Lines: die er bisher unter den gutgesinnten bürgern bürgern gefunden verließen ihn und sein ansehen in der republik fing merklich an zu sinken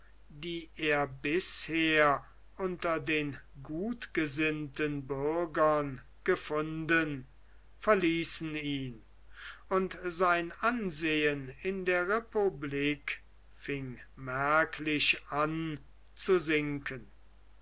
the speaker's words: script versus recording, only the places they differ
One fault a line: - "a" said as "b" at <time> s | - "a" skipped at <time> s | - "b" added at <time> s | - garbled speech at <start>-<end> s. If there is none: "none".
- "bürgern" skipped at 6.0 s